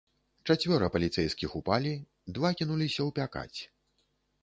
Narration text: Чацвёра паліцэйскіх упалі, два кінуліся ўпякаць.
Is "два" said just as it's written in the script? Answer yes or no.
yes